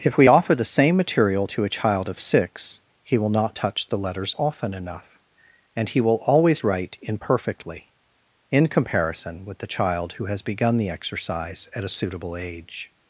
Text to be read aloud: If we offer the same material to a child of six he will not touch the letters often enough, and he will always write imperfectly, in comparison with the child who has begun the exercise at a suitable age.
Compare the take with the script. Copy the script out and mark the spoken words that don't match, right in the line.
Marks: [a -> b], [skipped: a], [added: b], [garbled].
If we offer the same material to a child of six he will not touch the letters often enough, and he will always write imperfectly, in comparison with the child who has begun the exercise at a suitable age.